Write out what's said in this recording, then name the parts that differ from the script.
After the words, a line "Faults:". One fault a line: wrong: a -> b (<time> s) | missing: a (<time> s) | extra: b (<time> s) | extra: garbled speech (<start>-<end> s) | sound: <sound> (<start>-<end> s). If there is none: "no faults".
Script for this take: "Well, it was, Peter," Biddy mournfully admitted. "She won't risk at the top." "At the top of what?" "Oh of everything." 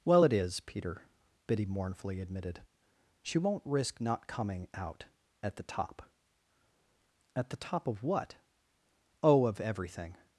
"Well, it is, Peter," Biddy mournfully admitted. "She won't risk not coming out at the top." "At the top of what?" "Oh of everything."
Faults:
wrong: was -> is (0.3 s)
extra: not coming out (4.0 s)